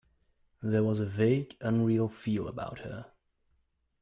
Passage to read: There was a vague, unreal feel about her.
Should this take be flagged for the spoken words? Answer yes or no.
no